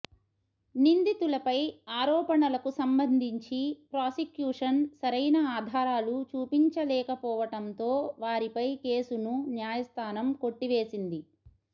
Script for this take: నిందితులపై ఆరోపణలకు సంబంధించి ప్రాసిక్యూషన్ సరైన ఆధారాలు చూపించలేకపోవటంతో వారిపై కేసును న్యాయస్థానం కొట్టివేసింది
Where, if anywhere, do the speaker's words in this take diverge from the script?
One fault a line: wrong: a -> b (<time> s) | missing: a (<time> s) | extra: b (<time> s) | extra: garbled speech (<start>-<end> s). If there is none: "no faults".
no faults